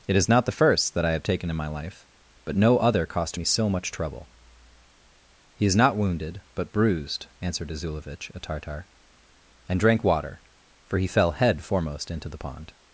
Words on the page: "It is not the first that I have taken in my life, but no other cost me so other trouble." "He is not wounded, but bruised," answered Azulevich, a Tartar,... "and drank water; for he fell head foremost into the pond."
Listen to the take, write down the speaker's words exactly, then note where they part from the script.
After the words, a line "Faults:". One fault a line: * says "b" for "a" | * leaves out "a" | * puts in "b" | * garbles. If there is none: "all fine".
"It is not the first that I have taken in my life, but no other cost me so much trouble." "He is not wounded, but bruised," answered Azulevich, a Tartar,... "and drank water; for he fell head foremost into the pond."
Faults:
* says "much" for "other"